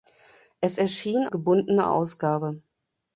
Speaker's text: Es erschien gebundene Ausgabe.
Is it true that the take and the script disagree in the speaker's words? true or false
false